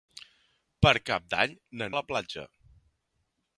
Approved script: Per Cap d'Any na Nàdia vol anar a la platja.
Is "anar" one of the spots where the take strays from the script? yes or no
yes